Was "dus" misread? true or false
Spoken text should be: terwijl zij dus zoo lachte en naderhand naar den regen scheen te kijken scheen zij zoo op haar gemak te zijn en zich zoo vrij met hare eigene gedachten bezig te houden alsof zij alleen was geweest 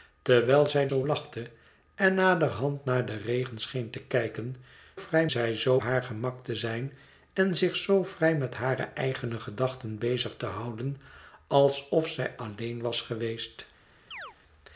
true